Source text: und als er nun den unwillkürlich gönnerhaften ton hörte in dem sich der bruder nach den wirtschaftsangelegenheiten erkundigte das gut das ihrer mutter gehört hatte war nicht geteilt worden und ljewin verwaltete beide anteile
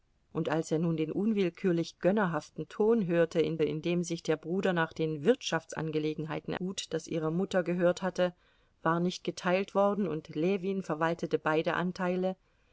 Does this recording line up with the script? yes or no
no